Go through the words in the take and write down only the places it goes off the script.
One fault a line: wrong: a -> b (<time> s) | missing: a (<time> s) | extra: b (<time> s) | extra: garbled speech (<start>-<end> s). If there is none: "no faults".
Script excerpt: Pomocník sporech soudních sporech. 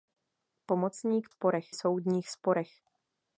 no faults